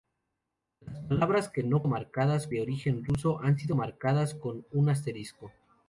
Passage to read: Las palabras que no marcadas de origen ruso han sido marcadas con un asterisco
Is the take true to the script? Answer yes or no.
yes